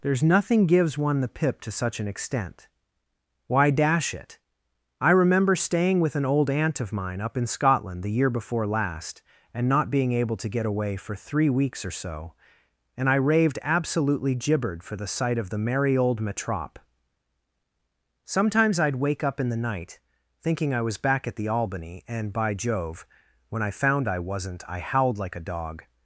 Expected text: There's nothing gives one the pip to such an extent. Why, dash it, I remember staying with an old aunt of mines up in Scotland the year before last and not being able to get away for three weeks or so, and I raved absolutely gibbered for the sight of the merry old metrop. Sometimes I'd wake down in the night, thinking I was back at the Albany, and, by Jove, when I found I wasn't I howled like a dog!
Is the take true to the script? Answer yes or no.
no